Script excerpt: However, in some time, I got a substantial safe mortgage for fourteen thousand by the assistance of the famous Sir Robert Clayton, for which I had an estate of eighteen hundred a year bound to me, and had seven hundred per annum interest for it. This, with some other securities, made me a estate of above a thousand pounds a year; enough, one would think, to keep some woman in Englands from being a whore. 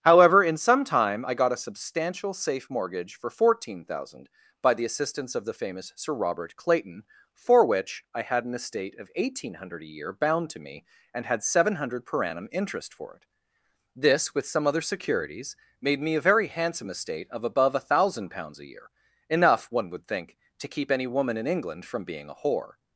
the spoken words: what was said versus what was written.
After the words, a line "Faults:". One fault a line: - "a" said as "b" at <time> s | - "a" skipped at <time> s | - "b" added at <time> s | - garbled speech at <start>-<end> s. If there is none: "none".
However, in some time, I got a substantial safe mortgage for fourteen thousand by the assistance of the famous Sir Robert Clayton, for which I had an estate of eighteen hundred a year bound to me, and had seven hundred per annum interest for it. This, with some other securities, made me a very handsome estate of above a thousand pounds a year; enough, one would think, to keep any woman in England from being a whore.
Faults:
- "very handsome" added at 16.2 s
- "some" said as "any" at 20.9 s
- "Englands" said as "England" at 21.5 s